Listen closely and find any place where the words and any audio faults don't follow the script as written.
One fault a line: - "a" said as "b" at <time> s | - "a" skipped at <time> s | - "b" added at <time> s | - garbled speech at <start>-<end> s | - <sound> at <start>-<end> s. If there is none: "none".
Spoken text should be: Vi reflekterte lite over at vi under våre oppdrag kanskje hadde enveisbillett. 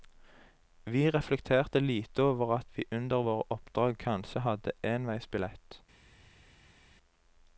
none